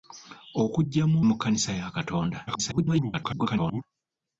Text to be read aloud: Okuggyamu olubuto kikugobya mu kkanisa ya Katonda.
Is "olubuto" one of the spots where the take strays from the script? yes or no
yes